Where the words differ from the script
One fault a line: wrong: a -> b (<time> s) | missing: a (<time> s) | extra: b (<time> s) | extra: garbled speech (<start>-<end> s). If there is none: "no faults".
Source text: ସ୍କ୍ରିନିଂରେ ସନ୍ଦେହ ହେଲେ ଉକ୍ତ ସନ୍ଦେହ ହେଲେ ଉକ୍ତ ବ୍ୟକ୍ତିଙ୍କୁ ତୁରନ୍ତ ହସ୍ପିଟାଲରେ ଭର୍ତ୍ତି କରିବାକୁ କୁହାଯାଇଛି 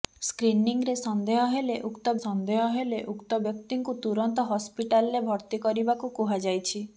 no faults